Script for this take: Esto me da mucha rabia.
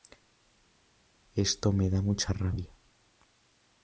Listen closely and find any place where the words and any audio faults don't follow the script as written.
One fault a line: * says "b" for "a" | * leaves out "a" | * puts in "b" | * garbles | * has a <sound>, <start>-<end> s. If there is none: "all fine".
all fine